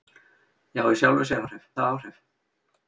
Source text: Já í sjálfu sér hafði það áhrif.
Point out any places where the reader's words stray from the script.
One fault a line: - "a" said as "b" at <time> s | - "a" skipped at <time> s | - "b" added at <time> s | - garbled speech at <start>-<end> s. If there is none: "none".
- "hafði" said as "áhrif" at 1.4 s